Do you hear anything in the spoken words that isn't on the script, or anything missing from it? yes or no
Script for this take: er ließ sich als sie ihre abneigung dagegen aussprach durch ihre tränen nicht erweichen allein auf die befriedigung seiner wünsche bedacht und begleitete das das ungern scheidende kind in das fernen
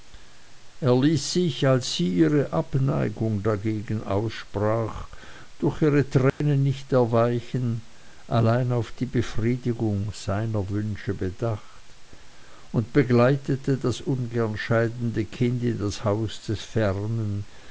yes